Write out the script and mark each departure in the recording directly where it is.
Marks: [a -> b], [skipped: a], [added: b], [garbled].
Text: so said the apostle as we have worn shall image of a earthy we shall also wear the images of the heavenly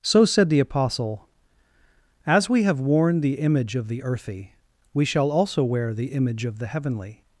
so said the apostle as we have worn [shall -> the] image of [a -> the] earthy we shall also wear the [images -> image] of the heavenly